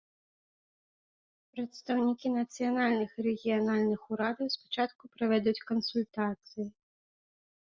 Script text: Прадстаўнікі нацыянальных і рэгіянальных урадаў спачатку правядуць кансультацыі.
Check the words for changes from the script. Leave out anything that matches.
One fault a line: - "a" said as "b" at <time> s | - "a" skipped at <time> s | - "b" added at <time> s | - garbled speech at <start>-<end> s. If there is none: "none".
none